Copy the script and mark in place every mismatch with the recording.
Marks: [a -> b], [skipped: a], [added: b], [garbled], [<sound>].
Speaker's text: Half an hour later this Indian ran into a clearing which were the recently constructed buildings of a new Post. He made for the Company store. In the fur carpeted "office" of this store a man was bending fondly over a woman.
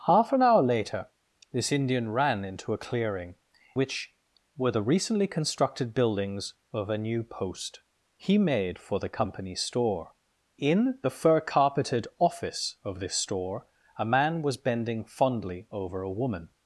Half an hour later this Indian ran into a clearing which were the recently constructed buildings of a new Post. He made for the Company store. In the fur carpeted "office" of this store a man was bending fondly over a woman.